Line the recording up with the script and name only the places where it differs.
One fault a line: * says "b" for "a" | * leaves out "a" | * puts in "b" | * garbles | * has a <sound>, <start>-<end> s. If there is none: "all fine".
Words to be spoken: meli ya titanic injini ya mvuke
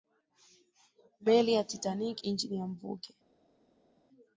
all fine